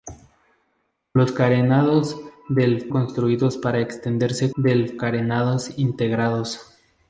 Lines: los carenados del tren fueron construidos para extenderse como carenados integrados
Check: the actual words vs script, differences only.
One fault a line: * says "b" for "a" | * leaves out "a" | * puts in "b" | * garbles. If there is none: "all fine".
* leaves out "tren fueron"
* says "del" for "como"